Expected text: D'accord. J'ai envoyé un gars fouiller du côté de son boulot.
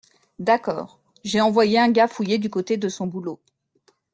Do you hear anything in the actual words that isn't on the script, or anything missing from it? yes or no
no